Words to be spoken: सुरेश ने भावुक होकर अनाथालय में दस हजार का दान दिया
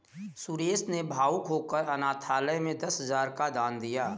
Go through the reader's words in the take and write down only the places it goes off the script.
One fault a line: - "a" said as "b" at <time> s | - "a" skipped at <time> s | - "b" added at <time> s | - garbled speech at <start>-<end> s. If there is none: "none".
none